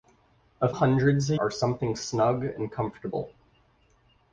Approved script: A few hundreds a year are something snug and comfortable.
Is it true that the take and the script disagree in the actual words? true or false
true